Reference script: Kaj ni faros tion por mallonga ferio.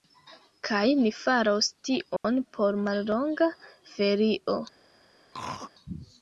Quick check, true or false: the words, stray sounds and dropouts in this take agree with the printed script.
false